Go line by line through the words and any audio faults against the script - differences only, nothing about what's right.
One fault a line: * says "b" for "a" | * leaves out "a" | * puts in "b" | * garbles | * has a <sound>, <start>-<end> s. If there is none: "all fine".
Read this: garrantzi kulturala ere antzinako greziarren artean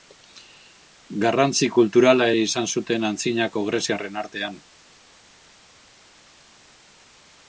* puts in "izan zuten"